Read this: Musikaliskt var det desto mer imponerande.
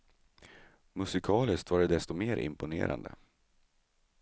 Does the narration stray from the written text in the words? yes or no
no